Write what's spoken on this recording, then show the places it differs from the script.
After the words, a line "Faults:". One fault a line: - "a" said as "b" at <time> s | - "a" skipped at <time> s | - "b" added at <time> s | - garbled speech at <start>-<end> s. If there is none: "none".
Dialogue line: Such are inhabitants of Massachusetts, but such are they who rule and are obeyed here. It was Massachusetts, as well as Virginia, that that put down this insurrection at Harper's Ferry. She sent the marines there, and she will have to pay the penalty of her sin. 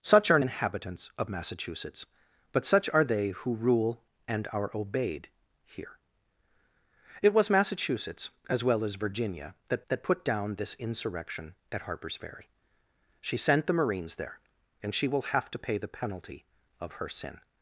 Such are inhabitants of Massachusetts, but such are they who rule and are obeyed here. It was Massachusetts, as well as Virginia, that that put down this insurrection at Harper's Ferry. She sent the marines there, and she will have to pay the penalty of her sin.
Faults:
none